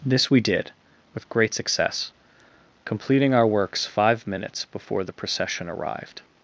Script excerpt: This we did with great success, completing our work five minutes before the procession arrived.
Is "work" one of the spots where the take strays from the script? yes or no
yes